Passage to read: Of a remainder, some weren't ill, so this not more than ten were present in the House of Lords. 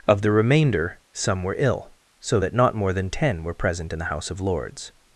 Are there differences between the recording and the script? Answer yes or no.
yes